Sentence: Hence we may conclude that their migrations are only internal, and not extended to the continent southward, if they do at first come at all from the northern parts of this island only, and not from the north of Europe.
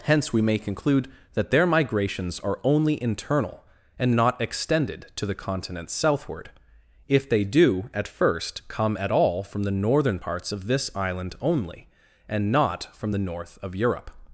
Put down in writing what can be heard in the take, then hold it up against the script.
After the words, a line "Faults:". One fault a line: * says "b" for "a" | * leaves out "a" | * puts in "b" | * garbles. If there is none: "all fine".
Hence we may conclude that their migrations are only internal, and not extended to the continent southward, if they do at first come at all from the northern parts of this island only, and not from the north of Europe.
Faults:
all fine